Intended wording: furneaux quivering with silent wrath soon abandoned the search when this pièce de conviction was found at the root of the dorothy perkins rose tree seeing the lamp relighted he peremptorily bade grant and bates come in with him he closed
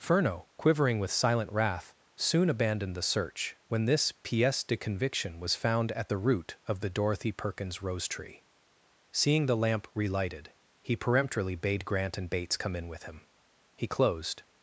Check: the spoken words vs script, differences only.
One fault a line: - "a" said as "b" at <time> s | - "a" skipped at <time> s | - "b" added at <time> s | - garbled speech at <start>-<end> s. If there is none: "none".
none